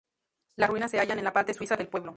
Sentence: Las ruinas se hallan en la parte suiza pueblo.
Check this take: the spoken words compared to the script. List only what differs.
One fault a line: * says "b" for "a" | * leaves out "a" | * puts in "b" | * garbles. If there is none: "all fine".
* puts in "del"